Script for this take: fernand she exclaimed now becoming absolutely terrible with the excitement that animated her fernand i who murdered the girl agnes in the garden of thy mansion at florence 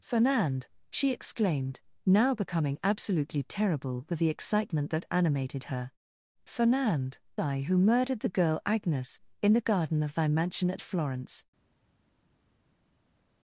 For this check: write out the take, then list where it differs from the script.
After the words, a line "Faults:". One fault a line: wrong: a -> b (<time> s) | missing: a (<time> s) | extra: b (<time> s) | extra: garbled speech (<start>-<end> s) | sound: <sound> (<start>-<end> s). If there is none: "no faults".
fernand she exclaimed now becoming absolutely terrible with the excitement that animated her fernand i who murdered the girl agnes in the garden of thy mansion at florence
Faults:
no faults